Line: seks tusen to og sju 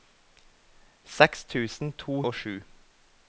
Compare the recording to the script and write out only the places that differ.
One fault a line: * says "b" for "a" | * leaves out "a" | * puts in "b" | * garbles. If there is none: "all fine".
all fine